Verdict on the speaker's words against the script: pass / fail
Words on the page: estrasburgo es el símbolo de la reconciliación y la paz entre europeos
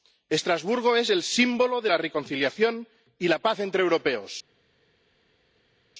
pass